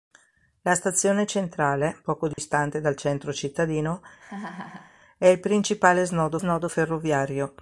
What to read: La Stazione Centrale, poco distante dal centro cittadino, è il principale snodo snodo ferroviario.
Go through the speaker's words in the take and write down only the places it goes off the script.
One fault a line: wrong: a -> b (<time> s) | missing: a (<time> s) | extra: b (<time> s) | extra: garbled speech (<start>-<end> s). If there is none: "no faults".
no faults